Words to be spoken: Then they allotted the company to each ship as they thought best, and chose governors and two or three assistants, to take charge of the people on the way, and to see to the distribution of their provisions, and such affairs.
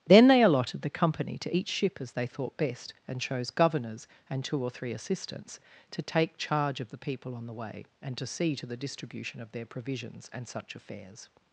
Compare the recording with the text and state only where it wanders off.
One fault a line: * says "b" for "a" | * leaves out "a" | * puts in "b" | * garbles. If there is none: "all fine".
all fine